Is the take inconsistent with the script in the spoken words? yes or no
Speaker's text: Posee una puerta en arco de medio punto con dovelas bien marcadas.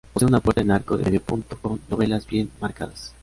no